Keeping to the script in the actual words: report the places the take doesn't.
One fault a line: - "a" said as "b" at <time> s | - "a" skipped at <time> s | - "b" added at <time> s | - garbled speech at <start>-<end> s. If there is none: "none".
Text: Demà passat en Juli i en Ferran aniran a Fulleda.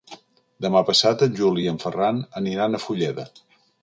none